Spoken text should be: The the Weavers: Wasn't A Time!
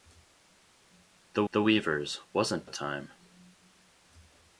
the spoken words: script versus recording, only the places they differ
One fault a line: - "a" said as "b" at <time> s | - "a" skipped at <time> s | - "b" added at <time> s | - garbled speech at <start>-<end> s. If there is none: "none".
none